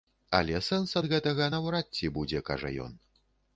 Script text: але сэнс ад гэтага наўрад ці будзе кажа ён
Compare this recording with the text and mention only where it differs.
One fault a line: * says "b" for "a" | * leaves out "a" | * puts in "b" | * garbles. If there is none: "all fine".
all fine